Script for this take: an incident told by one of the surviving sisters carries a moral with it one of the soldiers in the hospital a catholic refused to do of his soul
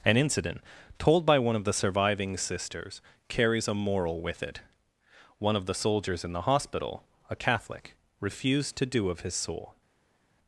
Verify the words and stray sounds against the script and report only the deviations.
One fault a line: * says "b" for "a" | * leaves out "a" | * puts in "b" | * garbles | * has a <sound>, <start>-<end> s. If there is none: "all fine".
all fine